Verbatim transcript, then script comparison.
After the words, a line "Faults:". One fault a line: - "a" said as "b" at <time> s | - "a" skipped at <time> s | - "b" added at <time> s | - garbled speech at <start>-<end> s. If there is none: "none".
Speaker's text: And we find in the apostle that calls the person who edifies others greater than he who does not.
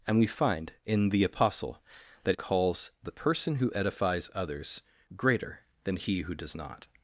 And we find in the apostle that calls the person who edifies others greater than he who does not.
Faults:
none